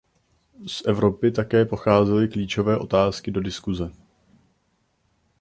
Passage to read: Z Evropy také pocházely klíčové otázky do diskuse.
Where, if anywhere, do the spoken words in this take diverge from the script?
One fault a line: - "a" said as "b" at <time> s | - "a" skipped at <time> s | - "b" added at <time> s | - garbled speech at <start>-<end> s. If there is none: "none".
none